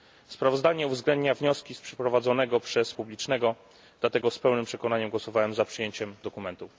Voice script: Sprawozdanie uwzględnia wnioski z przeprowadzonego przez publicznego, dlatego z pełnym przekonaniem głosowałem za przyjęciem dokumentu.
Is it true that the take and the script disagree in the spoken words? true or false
false